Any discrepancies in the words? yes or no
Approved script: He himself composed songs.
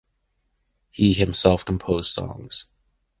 no